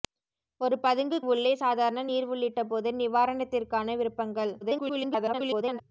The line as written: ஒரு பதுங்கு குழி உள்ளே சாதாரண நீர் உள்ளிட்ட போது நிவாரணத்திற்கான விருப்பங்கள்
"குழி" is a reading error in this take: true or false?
true